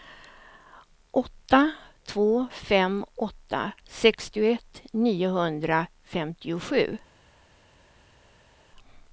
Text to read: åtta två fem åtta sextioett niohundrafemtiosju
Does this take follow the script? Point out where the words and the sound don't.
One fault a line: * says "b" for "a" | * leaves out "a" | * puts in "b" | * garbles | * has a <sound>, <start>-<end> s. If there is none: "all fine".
all fine